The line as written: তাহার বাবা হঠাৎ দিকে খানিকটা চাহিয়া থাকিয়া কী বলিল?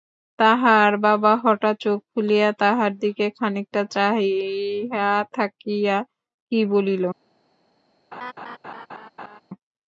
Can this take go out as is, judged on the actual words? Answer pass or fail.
fail